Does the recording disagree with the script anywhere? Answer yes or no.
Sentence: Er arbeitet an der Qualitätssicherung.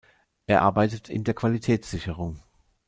yes